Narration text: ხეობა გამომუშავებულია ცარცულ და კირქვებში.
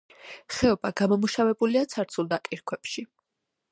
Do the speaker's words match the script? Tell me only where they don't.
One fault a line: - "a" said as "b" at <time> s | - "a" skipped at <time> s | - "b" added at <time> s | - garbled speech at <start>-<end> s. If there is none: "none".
none